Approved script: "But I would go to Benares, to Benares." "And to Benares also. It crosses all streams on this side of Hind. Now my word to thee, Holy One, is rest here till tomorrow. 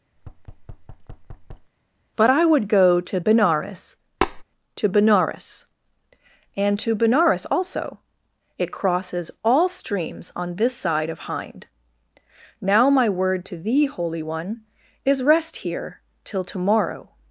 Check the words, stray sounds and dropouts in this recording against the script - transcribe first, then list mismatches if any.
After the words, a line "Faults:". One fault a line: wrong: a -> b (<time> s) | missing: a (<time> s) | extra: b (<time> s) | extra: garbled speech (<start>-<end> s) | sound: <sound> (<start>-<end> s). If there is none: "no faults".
"But I would go to Benares, to Benares." "And to Benares also. It crosses all streams on this side of Hind. Now my word to thee, Holy One, is rest here till tomorrow.
Faults:
sound: thud (0.2-1.7 s)
sound: tap (4.2-4.4 s)